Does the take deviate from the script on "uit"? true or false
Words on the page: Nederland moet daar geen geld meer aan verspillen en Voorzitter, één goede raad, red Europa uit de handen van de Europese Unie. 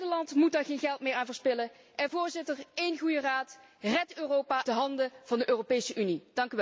true